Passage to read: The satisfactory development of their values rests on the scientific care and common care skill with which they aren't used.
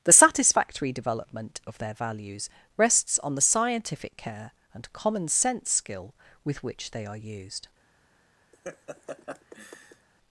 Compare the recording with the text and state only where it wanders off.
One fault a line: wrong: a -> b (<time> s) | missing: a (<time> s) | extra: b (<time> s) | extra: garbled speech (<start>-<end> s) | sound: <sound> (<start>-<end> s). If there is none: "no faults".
wrong: care -> sense (5.3 s)
wrong: aren't -> are (7.0 s)
sound: laugh (8.5-10.1 s)